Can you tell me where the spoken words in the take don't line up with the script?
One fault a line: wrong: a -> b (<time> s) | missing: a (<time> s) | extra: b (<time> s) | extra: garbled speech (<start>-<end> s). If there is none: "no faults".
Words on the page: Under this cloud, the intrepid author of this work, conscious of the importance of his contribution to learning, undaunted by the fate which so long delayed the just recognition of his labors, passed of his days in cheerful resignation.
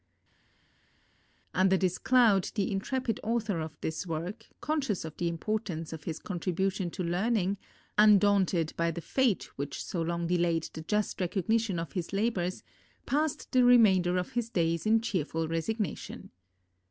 extra: the remainder (13.5 s)